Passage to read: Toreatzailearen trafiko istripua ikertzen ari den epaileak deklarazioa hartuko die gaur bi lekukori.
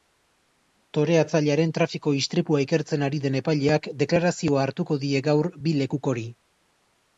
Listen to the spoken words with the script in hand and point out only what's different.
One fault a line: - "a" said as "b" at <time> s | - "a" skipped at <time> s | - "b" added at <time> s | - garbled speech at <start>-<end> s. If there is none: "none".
none